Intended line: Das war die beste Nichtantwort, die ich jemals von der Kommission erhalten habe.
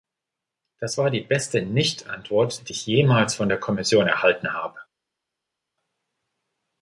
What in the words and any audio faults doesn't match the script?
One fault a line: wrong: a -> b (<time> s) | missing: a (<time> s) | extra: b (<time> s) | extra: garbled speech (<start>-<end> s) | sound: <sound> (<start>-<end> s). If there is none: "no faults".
missing: die (2.7 s)